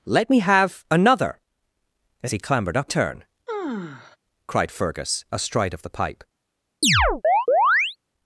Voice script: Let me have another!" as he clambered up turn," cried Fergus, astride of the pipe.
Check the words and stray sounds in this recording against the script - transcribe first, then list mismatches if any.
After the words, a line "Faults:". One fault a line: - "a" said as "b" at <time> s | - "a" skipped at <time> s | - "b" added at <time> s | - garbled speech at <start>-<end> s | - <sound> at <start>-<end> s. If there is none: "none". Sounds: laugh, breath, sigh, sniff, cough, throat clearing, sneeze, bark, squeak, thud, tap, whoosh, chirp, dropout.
Let me have another!" as he clambered up turn," cried Fergus, astride of the pipe.
Faults:
- sigh at 3.5-4.2 s
- chirp at 6.8-8.0 s